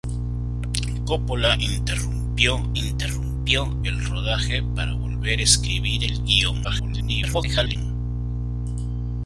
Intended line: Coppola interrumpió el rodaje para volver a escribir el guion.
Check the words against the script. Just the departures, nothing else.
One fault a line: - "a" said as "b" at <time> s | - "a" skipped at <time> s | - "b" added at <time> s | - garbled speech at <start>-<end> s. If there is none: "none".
- "interrumpió" added at 2.7 s
- garbled speech at 6.6-7.8 s